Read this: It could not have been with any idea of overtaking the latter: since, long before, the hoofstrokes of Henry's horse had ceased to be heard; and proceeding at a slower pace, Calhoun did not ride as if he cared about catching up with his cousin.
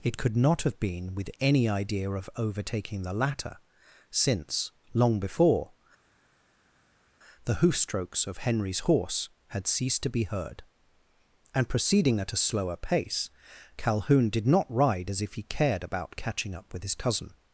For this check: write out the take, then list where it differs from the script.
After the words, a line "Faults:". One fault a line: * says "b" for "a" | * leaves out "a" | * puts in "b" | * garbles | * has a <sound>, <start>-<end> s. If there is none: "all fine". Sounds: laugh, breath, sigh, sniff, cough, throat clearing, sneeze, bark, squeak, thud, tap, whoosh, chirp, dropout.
It could not have been with any idea of overtaking the latter: since, long before, the hoofstrokes of Henry's horse had ceased to be heard; and proceeding at a slower pace, Calhoun did not ride as if he cared about catching up with his cousin.
Faults:
all fine